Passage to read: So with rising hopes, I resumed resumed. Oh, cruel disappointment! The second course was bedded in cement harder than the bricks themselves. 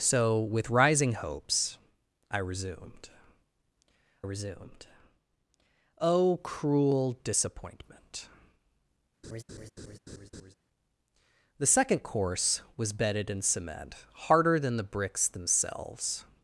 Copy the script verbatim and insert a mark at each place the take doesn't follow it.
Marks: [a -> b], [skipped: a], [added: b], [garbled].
So with rising hopes, I resumed resumed. Oh, cruel disappointment! The second course was bedded in cement harder than the bricks themselves.